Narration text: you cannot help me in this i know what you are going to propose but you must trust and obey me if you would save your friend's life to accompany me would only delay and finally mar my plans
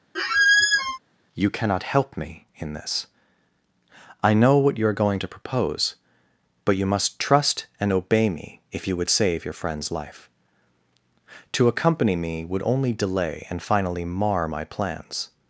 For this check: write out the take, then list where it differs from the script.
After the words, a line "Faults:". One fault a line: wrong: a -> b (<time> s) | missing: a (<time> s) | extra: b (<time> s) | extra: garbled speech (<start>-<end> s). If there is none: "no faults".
you cannot help me in this i know what you are going to propose but you must trust and obey me if you would save your friend's life to accompany me would only delay and finally mar my plans
Faults:
no faults